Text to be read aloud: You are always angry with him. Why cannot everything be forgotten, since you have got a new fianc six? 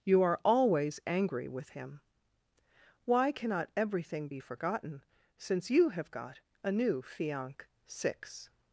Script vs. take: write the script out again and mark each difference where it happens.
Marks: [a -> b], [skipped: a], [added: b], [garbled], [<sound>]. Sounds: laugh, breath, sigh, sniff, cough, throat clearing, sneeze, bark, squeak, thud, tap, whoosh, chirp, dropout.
You are always angry with him. Why cannot everything be forgotten, since you have got a new fianc six?